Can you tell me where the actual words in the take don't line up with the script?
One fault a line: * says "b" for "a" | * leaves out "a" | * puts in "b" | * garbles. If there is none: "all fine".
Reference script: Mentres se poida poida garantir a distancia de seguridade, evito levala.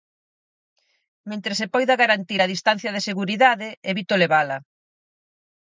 * leaves out "poida"